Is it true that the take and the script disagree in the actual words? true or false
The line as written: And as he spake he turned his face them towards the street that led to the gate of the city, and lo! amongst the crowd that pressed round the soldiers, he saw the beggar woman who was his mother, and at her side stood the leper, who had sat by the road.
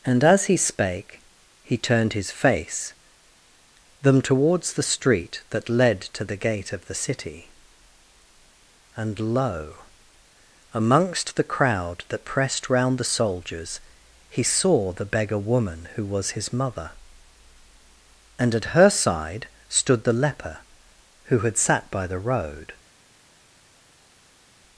false